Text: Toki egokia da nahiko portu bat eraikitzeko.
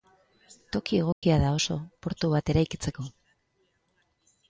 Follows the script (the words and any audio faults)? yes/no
no